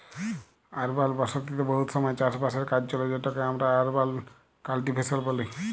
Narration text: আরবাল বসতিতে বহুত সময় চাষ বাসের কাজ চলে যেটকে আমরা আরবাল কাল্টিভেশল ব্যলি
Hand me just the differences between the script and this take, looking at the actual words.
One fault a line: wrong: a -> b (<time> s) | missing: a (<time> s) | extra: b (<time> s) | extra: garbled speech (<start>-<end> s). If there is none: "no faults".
no faults